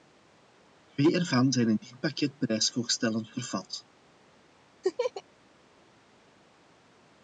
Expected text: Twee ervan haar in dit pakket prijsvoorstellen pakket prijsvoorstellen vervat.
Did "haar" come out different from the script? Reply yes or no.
yes